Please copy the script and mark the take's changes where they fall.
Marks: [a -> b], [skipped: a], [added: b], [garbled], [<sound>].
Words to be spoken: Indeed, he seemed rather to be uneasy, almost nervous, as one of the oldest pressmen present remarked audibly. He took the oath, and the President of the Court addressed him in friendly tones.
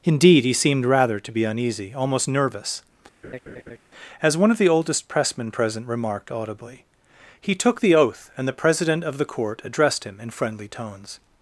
Indeed, he seemed rather to be uneasy, almost nervous, [laugh] as one of the oldest pressmen present remarked audibly. He took the oath, and the President of the Court addressed him in friendly tones.